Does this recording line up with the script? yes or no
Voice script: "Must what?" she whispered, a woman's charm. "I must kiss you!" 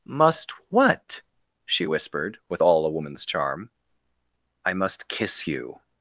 no